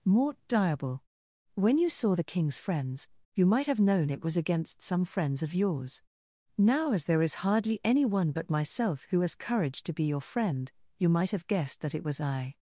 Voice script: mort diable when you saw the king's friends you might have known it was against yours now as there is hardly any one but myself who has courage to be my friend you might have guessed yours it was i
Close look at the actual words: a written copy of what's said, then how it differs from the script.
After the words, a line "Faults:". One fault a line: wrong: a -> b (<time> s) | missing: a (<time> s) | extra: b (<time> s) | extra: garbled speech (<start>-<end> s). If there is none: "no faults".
mort diable when you saw the king's friends you might have known it was against some friends of yours now as there is hardly any one but myself who has courage to be your friend you might have guessed that it was i
Faults:
extra: some friends of (4.8 s)
wrong: my -> your (10.0 s)
wrong: yours -> that (11.8 s)